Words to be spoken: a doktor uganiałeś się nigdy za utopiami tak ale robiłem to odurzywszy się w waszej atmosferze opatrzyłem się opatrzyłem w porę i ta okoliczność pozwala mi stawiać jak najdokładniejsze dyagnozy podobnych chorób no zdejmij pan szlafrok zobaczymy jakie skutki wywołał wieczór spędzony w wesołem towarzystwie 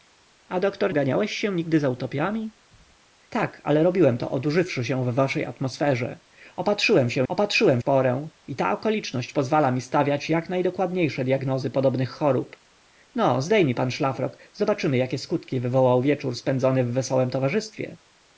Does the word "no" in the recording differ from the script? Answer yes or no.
no